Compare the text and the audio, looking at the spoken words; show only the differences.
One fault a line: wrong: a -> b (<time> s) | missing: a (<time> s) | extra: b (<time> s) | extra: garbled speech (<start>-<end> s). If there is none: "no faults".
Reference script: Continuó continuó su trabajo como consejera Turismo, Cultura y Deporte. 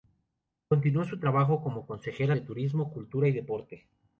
missing: continuó (1.0 s)
extra: de (2.3 s)